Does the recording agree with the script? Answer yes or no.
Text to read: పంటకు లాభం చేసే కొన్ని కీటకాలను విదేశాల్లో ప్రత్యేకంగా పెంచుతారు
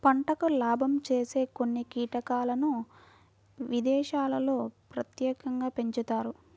yes